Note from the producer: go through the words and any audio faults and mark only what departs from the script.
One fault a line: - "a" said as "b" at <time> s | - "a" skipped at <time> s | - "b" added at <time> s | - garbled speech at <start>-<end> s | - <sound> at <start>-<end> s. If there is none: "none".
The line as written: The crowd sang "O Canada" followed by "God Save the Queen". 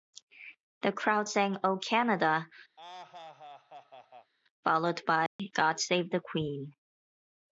- laugh at 2.8-4.3 s
- dropout at 5.3-5.4 s